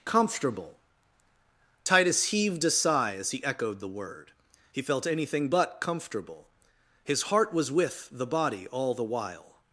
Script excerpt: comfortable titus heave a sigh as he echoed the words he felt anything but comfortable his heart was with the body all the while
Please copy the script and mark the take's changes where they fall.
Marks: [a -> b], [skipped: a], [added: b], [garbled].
comfortable titus [heave -> heaved] a sigh as he echoed the [words -> word] he felt anything but comfortable his heart was with the body all the while